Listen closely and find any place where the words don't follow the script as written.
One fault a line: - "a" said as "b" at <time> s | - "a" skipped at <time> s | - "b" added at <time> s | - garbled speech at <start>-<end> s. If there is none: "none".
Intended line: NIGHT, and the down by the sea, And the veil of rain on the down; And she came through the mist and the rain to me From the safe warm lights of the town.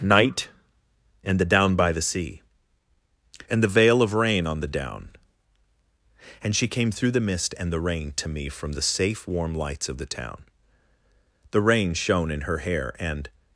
- "The rain shone in her hair And" added at 11.5 s